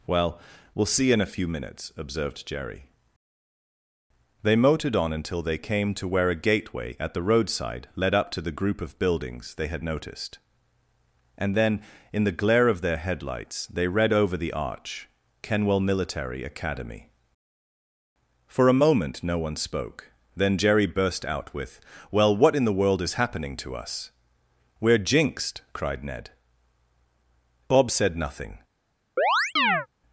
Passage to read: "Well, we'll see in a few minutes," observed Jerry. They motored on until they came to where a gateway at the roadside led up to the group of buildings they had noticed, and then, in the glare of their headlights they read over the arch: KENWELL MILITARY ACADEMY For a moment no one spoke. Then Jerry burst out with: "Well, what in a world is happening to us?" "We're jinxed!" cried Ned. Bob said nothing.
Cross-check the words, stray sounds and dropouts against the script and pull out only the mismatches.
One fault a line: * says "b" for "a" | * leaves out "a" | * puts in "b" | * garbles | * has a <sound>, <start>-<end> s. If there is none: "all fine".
* says "the" for "a"
* has a chirp, 29.2-29.9 s